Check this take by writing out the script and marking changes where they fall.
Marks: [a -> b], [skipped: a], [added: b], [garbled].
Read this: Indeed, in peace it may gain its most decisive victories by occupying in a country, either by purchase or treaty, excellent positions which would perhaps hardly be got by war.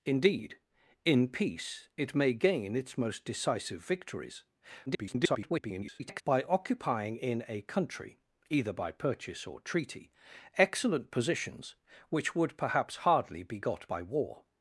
Indeed, in peace it may gain its most decisive victories [garbled] by occupying in a country, either by purchase or treaty, excellent positions which would perhaps hardly be got by war.